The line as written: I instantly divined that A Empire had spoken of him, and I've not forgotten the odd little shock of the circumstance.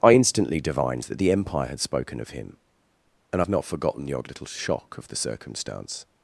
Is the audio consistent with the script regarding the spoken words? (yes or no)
no